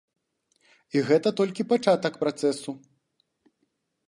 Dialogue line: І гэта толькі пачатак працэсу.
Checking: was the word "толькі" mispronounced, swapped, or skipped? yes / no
no